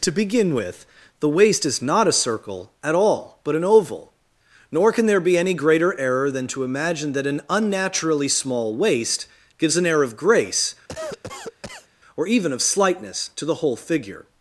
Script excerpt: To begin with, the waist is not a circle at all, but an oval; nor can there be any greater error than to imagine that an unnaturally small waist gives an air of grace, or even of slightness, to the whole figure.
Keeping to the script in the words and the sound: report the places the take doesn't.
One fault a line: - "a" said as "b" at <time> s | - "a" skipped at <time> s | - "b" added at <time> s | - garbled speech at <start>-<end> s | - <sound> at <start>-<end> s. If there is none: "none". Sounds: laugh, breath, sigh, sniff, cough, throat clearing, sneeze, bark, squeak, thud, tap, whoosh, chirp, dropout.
- cough at 10.9-11.9 s